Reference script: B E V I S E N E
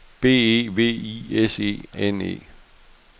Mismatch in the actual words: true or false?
false